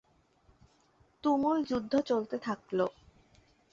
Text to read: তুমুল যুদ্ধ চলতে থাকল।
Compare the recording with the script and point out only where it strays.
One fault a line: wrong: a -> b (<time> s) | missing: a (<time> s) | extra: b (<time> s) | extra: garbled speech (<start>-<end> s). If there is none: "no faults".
no faults